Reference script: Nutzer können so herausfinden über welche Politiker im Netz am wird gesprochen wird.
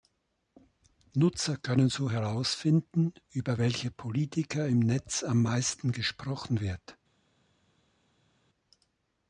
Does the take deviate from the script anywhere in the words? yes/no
yes